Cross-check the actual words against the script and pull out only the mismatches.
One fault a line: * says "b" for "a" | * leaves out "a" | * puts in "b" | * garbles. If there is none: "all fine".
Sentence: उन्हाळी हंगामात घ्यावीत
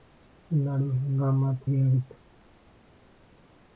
all fine